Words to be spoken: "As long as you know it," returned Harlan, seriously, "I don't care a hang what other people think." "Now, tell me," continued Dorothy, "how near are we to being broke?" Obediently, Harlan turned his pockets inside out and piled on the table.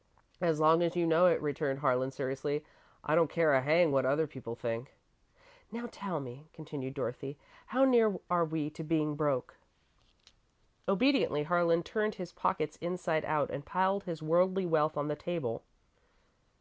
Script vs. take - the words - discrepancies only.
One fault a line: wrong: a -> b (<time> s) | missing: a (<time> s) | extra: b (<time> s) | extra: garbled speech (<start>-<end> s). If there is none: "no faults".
extra: his worldly wealth (14.0 s)